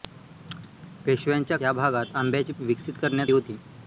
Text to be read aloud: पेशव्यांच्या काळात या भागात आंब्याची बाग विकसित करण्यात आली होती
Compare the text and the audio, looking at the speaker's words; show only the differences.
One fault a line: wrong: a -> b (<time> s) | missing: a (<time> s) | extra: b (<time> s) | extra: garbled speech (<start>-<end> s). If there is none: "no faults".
missing: काळात (1.6 s)
missing: बाग (2.5 s)
missing: आली (3.3 s)